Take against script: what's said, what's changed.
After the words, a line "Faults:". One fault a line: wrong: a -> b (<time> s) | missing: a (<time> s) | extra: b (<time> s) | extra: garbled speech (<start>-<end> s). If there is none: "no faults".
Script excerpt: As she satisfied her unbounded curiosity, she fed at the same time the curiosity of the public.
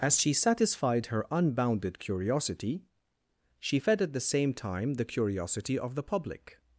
As she satisfied her unbounded curiosity, she fed at the same time the curiosity of the public.
Faults:
no faults